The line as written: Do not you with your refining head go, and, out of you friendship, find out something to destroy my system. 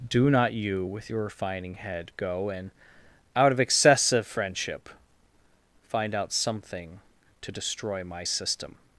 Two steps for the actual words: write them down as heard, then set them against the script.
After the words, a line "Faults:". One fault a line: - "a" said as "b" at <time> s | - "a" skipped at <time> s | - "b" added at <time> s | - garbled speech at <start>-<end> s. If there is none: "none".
Do not you with your refining head go, and, out of excessive friendship, find out something to destroy my system.
Faults:
- "you" said as "excessive" at 3.6 s